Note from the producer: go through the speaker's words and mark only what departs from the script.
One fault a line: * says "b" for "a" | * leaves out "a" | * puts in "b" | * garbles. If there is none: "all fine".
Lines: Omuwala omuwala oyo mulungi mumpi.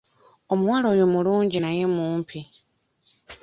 * leaves out "omuwala"
* puts in "naye"